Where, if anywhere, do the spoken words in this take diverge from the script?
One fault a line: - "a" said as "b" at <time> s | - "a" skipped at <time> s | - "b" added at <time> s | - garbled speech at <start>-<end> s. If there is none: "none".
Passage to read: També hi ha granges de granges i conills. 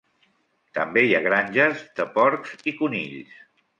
- "granges" said as "porcs" at 2.2 s